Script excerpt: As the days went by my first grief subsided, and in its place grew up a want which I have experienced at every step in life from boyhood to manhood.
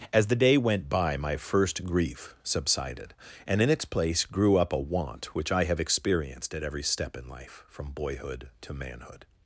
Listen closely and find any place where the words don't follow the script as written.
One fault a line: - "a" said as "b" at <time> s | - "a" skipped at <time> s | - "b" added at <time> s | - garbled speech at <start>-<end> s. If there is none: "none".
- "days" said as "day" at 0.3 s